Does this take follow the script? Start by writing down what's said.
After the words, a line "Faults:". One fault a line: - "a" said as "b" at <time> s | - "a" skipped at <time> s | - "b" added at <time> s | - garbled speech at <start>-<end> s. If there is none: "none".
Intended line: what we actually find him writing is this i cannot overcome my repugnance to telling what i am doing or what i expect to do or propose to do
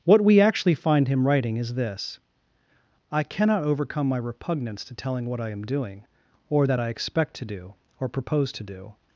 what we actually find him writing is this i cannot overcome my repugnance to telling what i am doing or that i expect to do or propose to do
Faults:
- "what" said as "that" at 6.6 s